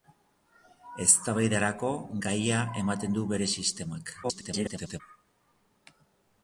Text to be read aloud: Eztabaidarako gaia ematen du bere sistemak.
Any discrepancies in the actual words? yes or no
yes